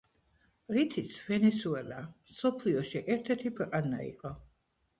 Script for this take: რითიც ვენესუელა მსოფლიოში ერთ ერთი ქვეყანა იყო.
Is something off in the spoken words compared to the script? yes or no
no